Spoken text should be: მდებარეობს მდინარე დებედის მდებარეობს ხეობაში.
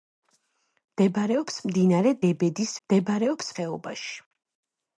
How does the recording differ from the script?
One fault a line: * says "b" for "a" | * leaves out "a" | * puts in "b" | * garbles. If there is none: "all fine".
all fine